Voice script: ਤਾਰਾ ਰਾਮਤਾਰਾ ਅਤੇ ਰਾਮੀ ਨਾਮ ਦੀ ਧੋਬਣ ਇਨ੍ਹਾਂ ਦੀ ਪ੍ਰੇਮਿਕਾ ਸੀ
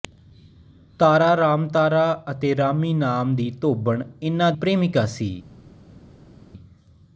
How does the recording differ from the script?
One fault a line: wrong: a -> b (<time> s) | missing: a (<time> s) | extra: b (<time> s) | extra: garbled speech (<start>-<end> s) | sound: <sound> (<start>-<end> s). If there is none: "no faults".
missing: ਦੀ (4.5 s)